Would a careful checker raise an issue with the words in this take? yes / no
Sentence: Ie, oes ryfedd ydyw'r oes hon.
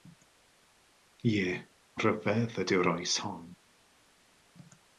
yes